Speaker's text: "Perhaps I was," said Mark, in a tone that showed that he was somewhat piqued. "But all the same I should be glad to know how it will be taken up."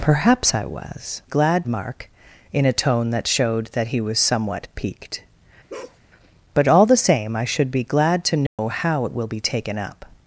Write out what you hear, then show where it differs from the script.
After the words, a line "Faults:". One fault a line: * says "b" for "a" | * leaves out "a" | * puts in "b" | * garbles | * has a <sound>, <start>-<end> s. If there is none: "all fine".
"Perhaps I was," glad Mark, in a tone that showed that he was somewhat piqued. "But all the same I should be glad to know how it will be taken up."
Faults:
* says "glad" for "said"
* has a bark, 5.7-6.0 s
* has a dropout, 8.5-8.6 s